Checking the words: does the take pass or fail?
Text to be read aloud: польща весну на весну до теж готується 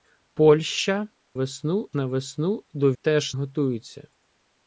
pass